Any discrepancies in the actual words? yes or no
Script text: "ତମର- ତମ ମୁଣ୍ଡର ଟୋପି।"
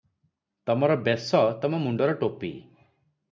yes